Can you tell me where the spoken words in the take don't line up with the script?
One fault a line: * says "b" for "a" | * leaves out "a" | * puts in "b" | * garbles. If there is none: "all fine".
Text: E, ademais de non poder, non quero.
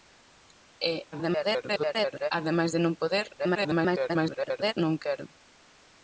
* garbles
* garbles